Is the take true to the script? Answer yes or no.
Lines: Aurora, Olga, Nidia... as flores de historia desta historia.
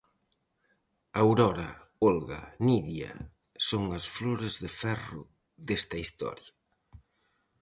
no